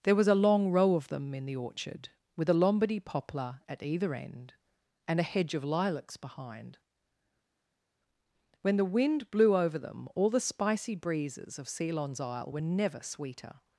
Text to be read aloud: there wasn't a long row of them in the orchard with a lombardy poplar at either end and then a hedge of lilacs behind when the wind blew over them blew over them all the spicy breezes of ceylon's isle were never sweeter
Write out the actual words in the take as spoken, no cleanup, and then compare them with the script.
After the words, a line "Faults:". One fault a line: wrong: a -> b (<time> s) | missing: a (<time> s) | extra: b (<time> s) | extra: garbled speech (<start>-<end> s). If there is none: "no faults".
there was a long row of them in the orchard with a lombardy poplar at either end and a hedge of lilacs behind when the wind blew over them all the spicy breezes of ceylon's isle were never sweeter
Faults:
wrong: wasn't -> was (0.1 s)
missing: then (5.2 s)
missing: blew over them (10.1 s)